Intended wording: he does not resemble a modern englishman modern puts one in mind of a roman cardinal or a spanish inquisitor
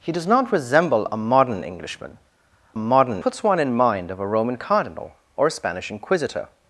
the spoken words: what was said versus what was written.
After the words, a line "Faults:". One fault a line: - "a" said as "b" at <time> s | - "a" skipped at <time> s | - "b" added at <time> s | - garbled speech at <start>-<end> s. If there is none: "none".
he does not resemble a modern englishman modern puts one in mind of a roman cardinal or a spanish inquisitor
Faults:
none